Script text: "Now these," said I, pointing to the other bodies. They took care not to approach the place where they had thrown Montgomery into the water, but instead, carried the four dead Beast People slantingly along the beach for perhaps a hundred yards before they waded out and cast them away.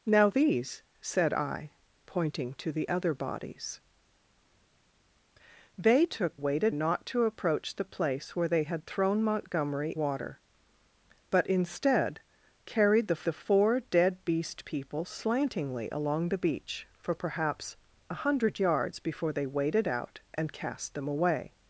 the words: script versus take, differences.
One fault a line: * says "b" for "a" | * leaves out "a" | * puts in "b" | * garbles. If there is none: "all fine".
* says "waded" for "care"
* leaves out "into the"
* puts in "the"